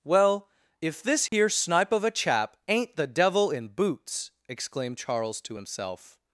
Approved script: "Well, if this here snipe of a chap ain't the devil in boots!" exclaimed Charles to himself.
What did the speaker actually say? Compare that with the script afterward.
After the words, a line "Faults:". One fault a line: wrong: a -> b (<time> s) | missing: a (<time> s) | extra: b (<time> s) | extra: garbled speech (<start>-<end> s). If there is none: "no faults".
"Well, if this here snipe of a chap ain't the devil in boots!" exclaimed Charles to himself.
Faults:
no faults